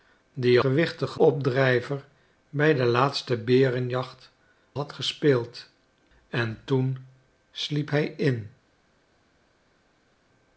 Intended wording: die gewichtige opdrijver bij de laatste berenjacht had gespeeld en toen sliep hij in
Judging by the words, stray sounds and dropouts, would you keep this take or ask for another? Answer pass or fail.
pass